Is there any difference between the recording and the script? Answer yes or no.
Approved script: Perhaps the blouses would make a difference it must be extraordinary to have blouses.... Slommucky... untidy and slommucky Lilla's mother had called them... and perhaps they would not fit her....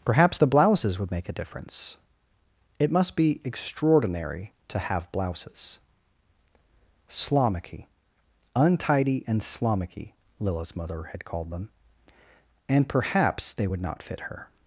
no